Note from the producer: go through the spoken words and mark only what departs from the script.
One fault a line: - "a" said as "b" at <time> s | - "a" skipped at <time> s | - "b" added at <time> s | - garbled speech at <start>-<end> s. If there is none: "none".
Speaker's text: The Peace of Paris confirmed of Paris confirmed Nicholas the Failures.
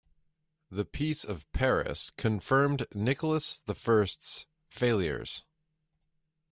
- "of Paris confirmed" skipped at 2.9 s
- "First's" added at 3.8 s